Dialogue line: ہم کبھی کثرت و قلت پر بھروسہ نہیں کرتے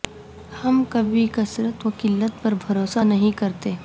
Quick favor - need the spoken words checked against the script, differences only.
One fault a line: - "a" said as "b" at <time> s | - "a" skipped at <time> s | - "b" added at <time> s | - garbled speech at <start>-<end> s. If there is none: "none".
none